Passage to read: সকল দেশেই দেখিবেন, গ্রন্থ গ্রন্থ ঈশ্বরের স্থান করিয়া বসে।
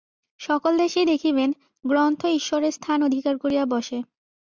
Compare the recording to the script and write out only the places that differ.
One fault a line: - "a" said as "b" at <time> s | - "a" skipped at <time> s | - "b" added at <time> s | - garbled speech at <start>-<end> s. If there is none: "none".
- "গ্রন্থ" skipped at 2.2 s
- "অধিকার" added at 3.0 s